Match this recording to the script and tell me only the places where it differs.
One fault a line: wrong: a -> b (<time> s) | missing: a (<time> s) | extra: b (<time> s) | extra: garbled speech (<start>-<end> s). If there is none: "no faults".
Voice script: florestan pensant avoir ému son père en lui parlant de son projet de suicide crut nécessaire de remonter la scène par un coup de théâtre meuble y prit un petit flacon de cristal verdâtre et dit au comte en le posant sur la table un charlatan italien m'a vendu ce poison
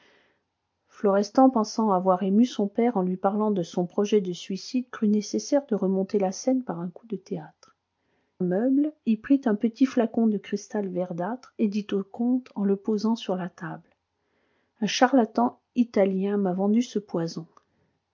no faults